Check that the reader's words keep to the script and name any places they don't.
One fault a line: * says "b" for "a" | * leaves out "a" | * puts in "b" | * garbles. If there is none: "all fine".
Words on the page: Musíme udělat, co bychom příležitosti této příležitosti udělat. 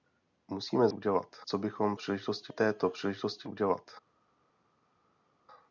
all fine